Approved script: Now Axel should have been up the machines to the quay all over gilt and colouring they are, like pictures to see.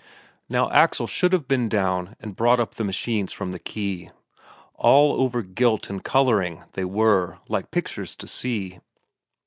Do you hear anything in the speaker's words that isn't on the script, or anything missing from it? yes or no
yes